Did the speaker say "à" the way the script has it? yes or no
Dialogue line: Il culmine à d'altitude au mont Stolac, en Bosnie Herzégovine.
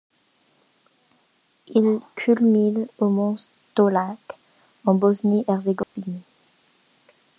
no